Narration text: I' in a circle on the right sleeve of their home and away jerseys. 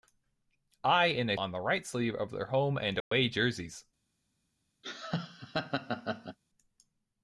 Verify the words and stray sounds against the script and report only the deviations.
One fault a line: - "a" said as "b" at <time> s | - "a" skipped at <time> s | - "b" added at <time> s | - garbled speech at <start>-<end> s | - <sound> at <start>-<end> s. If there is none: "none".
- "circle" skipped at 1.4 s
- dropout at 3.0-3.1 s
- laugh at 4.8-6.4 s